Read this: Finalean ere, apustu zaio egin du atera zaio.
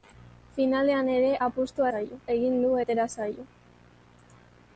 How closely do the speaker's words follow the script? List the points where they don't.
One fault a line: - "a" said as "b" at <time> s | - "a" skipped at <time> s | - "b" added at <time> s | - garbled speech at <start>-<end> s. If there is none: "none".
none